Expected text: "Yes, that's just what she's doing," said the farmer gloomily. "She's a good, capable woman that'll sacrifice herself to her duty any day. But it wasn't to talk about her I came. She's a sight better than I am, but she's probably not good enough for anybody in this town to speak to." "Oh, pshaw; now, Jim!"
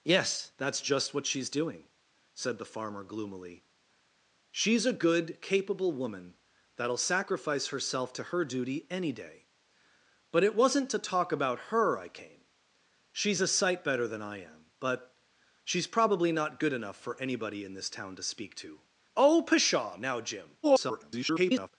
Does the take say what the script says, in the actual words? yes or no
no